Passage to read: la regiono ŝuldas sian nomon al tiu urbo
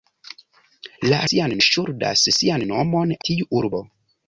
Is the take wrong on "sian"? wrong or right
right